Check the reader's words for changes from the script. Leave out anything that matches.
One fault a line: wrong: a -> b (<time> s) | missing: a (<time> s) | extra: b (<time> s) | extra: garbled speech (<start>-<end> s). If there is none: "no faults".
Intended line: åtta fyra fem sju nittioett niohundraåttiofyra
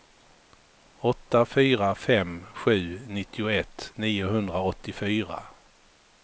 no faults